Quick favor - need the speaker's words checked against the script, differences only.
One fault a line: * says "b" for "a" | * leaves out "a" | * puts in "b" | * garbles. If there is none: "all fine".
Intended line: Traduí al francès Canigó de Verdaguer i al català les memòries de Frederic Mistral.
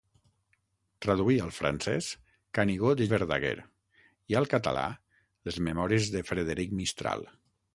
all fine